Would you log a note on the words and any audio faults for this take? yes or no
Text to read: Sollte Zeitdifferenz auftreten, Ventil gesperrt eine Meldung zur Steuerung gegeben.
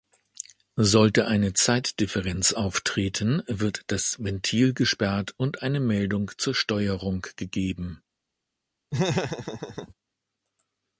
yes